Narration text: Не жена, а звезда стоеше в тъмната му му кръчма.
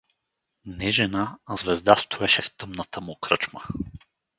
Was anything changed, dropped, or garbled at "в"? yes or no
no